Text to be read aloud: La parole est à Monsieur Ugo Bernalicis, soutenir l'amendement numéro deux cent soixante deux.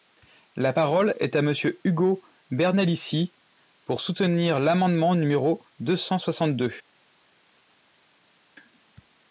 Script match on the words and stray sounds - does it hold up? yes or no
no